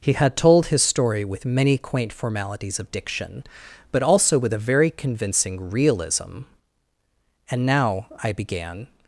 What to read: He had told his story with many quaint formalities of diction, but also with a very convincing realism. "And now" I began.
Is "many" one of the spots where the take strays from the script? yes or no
no